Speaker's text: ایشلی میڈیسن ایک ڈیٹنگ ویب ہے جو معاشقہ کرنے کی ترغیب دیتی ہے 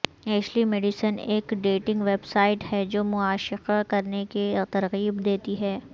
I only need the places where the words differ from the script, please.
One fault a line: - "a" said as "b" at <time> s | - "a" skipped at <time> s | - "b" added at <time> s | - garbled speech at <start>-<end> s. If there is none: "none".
- "سائٹ" added at 2.2 s